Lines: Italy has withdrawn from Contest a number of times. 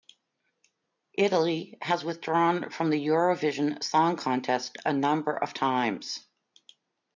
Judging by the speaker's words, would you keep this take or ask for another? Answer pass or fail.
fail